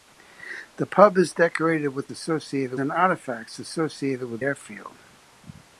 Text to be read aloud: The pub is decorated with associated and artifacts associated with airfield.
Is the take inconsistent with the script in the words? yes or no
no